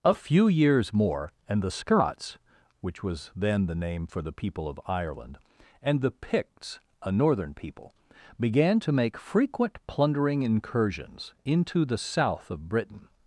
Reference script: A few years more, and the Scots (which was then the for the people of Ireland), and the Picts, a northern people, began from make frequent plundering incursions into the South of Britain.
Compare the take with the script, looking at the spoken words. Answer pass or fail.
fail